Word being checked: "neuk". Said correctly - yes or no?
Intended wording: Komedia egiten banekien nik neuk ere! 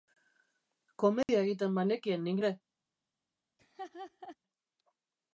no